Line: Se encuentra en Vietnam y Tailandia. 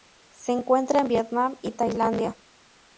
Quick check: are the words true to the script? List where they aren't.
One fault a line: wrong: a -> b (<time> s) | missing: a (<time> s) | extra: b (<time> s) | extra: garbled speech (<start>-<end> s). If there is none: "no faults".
no faults